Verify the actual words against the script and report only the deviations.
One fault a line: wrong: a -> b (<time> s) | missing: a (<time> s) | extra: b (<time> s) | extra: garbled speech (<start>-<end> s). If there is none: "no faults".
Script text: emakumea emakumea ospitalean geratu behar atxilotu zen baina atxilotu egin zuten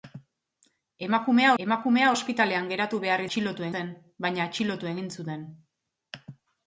no faults